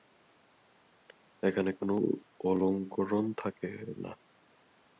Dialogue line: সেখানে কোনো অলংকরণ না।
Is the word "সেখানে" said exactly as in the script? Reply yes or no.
no